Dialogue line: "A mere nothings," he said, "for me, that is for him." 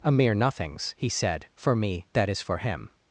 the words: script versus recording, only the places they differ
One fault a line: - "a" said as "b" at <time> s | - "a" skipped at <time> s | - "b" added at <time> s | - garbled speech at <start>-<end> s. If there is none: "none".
none